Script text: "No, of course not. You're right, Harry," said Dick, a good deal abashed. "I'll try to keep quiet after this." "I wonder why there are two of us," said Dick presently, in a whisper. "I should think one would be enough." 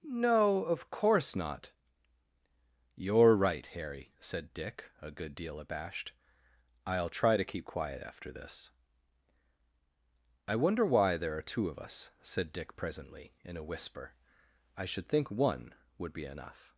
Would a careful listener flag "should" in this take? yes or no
no